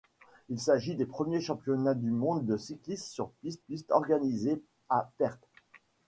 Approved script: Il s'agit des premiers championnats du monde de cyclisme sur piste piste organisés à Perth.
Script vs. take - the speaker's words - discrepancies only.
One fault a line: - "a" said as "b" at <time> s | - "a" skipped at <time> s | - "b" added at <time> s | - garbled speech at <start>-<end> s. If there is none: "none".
none